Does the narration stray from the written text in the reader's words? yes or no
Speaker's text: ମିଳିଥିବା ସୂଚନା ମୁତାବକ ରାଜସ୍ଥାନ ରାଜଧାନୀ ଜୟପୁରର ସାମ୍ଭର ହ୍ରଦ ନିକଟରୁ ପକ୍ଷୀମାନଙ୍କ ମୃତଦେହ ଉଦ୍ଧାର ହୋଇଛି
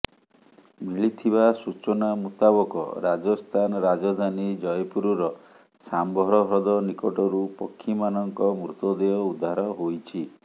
no